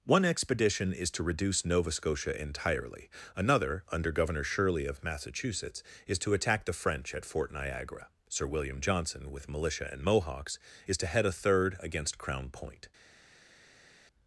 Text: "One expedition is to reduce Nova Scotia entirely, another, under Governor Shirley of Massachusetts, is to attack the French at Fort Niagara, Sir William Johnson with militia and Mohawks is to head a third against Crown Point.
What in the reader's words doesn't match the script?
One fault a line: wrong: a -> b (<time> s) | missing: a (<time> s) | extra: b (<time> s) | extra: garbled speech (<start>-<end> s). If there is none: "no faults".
no faults